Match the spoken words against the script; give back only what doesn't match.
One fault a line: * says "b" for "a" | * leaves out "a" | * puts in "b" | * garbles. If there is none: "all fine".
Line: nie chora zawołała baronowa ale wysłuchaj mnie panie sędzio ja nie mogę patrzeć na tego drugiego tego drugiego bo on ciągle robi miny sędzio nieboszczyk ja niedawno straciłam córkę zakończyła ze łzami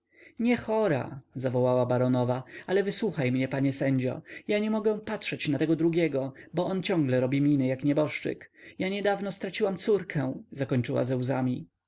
* leaves out "tego drugiego"
* says "jak" for "sędzio"